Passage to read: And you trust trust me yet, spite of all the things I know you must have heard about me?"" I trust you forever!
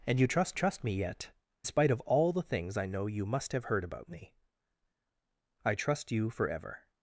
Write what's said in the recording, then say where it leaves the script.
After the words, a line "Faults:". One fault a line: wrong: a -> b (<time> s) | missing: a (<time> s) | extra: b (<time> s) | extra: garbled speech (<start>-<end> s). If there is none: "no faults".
And you trust trust me yet, spite of all the things I know you must have heard about me?"" I trust you forever!
Faults:
no faults